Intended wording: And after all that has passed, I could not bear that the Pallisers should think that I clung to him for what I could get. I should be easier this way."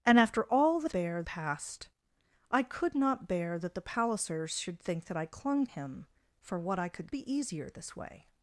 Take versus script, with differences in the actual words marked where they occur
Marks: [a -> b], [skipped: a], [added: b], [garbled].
And after all that [has -> bear] passed, I could not bear that the Pallisers should think that I clung [skipped: to] him for what I could [skipped: get. I should] be easier this way."